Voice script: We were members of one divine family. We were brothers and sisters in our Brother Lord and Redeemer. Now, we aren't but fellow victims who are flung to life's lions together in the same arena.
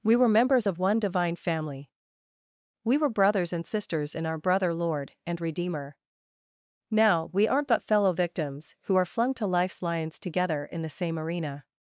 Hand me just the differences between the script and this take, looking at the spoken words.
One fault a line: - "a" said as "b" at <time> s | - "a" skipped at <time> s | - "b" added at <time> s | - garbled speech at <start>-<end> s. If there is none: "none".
none